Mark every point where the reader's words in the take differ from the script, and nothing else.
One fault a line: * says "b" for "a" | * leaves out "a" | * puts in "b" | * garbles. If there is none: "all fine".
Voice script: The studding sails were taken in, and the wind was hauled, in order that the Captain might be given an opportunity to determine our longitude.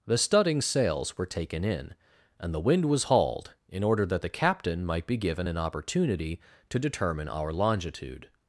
all fine